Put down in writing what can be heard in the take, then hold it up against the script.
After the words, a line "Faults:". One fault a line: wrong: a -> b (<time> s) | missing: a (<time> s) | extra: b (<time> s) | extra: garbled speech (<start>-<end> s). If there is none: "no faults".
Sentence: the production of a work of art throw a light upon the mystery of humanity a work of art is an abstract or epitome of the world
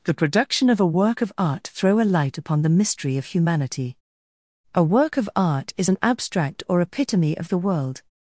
the production of a work of art throw a light upon the mystery of humanity a work of art is an abstract or epitome of the world
Faults:
no faults